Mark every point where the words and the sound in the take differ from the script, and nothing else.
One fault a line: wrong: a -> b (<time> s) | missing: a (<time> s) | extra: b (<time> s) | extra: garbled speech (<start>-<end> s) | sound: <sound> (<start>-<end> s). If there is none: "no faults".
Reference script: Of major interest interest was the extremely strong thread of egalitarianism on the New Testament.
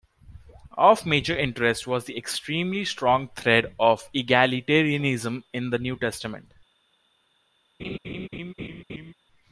missing: interest (1.9 s)
wrong: on -> in (5.5 s)
sound: laugh (7.8-9.1 s)